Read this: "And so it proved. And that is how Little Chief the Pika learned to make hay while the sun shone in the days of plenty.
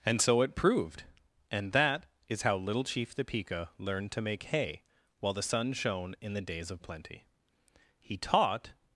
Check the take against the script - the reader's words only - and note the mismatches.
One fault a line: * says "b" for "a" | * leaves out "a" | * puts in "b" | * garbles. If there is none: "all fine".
* puts in "He taught"